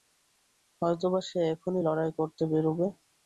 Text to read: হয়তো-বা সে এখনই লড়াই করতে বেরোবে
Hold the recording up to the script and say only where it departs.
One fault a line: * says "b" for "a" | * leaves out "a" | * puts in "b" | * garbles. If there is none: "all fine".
all fine